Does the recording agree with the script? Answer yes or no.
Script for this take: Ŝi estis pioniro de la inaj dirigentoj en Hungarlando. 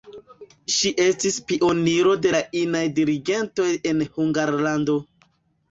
yes